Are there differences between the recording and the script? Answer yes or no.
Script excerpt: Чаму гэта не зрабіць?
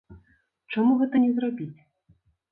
no